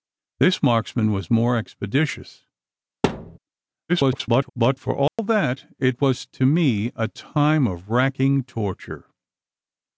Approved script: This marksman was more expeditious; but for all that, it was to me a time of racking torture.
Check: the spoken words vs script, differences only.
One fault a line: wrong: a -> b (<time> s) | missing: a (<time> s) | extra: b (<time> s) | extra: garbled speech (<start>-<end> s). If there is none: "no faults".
extra: garbled speech (3.9-4.5 s)